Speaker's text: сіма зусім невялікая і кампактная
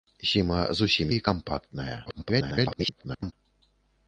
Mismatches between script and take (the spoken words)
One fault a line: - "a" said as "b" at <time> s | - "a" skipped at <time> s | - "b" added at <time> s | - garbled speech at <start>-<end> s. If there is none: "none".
- "невялікая" skipped at 1.1 s
- garbled speech at 2.1-3.3 s